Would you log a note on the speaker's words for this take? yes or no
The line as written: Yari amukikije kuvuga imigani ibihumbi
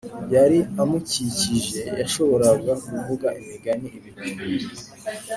yes